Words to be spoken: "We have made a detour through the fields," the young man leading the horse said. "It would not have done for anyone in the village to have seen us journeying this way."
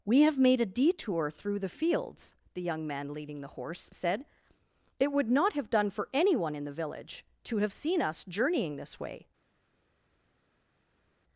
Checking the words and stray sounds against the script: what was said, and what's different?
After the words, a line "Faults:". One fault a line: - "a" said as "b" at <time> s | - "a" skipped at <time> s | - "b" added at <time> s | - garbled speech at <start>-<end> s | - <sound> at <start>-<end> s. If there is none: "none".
"We have made a detour through the fields," the young man leading the horse said. "It would not have done for anyone in the village to have seen us journeying this way."
Faults:
none